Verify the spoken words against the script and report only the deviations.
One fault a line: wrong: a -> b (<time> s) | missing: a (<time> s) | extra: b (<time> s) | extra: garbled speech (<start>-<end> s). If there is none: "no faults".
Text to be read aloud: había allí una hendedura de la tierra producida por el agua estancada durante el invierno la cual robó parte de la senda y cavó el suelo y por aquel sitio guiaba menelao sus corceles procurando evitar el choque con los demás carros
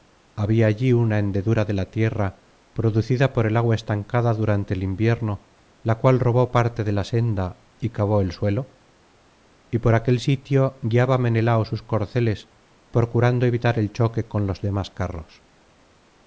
no faults